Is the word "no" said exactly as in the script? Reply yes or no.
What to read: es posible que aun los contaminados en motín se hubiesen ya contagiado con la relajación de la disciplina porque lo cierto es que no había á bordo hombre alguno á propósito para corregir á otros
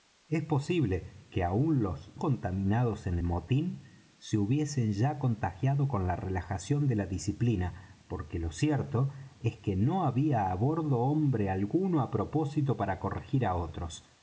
yes